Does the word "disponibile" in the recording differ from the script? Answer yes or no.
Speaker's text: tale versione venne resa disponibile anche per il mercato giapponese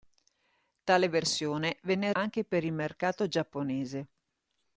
yes